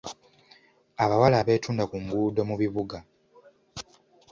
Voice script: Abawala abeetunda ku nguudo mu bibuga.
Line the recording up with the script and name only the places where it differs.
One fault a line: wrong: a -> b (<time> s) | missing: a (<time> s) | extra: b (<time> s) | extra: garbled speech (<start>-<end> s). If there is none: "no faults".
no faults